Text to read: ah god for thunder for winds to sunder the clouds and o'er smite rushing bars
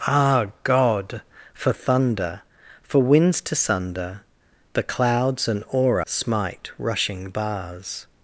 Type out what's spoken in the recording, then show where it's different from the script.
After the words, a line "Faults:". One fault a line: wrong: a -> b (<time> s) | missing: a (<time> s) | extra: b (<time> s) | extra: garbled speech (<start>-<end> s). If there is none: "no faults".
ah god for thunder for winds to sunder the clouds and o'er smite rushing bars
Faults:
no faults